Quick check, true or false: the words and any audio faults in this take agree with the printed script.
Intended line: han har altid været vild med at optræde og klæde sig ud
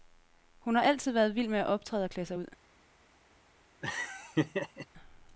false